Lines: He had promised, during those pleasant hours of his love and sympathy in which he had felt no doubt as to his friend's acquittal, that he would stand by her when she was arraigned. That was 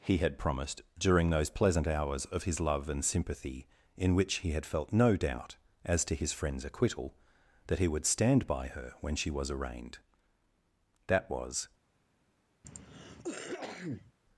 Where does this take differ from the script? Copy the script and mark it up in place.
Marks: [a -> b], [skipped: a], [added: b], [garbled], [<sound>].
He had promised, during those pleasant hours of his love and sympathy in which he had felt no doubt as to his friend's acquittal, that he would stand by her when she was arraigned. That was [cough]